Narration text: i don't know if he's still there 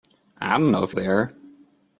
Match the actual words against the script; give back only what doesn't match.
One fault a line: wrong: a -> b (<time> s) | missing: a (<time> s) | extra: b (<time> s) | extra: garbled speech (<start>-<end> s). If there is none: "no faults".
missing: he's still (0.9 s)